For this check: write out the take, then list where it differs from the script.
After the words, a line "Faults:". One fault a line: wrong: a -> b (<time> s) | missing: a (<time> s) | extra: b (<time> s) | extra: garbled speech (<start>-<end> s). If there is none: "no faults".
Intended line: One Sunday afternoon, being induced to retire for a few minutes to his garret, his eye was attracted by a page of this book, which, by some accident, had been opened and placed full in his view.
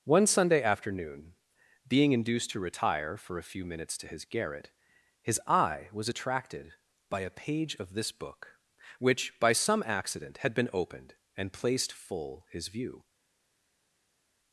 One Sunday afternoon, being induced to retire for a few minutes to his garret, his eye was attracted by a page of this book, which, by some accident, had been opened and placed full his view.
Faults:
missing: in (12.5 s)